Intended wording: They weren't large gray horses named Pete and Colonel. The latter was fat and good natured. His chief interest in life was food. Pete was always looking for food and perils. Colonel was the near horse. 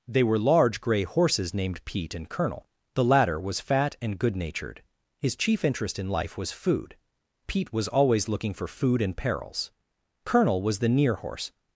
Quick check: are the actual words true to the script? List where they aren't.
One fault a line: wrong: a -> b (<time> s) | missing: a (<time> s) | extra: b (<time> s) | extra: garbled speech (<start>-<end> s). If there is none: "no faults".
wrong: weren't -> were (0.2 s)